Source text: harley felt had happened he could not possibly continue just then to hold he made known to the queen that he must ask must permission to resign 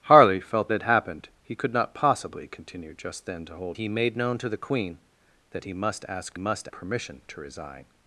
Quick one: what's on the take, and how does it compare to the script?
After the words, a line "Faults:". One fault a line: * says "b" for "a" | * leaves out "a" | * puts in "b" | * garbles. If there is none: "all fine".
harley felt had happened he could not possibly continue just then to hold he made known to the queen that he must ask must permission to resign
Faults:
all fine